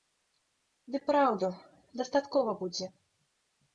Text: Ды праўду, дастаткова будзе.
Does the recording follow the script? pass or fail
pass